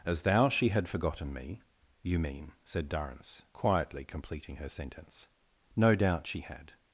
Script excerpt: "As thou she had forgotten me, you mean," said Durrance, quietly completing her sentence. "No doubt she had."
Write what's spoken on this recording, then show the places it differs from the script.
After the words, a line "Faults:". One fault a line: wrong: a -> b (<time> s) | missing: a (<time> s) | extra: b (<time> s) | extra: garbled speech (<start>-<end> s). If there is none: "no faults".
"As thou she had forgotten me, you mean," said Durrance, quietly completing her sentence. "No doubt she had."
Faults:
no faults